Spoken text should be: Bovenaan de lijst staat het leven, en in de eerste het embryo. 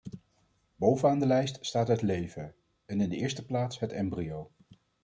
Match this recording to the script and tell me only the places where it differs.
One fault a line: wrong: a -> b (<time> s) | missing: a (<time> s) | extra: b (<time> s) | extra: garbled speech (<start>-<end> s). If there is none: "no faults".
extra: plaats (3.5 s)